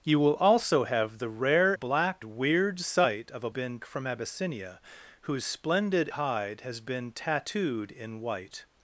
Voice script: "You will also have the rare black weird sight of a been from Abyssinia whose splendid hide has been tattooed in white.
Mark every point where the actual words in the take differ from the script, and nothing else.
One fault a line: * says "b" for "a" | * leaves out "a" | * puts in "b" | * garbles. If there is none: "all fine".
all fine